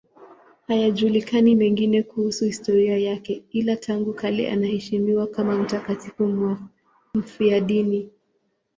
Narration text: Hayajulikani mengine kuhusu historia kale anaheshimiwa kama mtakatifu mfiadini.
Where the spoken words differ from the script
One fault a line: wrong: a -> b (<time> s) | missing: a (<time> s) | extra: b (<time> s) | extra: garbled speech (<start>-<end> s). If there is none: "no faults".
extra: yake ila tangu (3.0 s)